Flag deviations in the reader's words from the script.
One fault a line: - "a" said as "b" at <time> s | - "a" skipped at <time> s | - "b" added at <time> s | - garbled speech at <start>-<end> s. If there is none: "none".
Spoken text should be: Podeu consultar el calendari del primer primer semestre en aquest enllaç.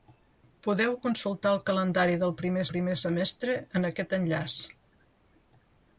none